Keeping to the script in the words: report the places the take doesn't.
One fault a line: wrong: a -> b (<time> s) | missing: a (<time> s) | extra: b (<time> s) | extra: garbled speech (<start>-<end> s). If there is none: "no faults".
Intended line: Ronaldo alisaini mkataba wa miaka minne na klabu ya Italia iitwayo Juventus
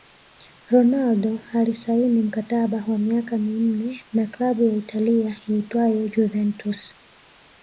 no faults